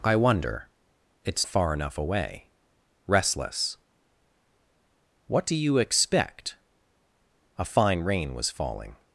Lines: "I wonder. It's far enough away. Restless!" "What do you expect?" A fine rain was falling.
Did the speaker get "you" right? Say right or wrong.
right